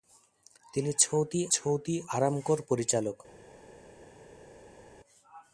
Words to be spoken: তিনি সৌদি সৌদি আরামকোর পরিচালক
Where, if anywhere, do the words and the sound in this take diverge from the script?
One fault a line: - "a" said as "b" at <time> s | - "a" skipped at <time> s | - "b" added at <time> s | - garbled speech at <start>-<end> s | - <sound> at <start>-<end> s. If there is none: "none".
none